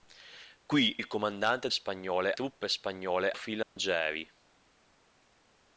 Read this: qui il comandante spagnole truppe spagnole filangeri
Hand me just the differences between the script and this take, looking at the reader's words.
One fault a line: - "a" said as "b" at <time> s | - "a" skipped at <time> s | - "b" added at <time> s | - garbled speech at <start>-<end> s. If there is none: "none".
none